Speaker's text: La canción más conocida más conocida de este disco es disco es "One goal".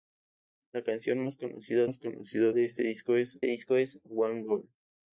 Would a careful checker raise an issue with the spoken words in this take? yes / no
no